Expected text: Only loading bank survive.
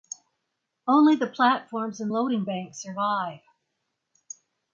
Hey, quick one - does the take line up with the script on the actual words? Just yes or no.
no